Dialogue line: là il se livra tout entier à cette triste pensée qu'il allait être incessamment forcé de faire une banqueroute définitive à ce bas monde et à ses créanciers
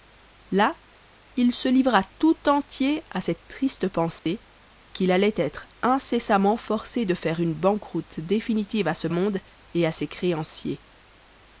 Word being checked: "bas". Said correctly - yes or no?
no